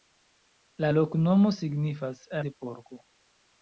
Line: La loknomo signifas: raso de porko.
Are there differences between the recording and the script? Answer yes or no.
yes